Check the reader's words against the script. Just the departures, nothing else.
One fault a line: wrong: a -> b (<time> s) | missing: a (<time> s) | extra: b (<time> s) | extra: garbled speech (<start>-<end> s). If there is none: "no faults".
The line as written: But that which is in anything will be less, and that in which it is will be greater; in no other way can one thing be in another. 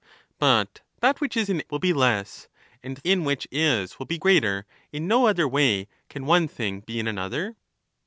missing: anything (1.6 s)
missing: that (3.0 s)
missing: it (3.5 s)